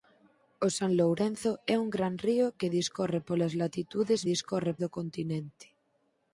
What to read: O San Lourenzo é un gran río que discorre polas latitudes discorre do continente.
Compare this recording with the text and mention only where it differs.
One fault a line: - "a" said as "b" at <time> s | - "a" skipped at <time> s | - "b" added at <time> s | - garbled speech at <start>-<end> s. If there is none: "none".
none